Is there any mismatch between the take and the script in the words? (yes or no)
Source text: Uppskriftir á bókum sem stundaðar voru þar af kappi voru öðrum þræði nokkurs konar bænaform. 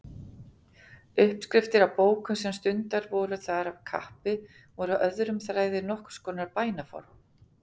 no